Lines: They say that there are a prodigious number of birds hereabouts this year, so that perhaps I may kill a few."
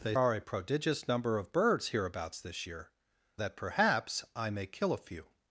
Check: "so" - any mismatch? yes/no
yes